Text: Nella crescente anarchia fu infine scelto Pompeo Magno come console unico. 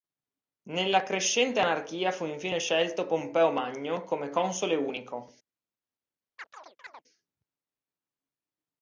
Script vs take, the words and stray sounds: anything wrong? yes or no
yes